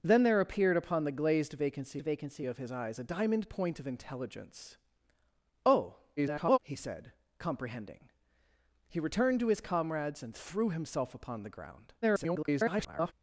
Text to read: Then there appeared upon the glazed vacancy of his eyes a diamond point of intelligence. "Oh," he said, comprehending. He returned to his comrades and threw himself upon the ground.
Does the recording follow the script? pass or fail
fail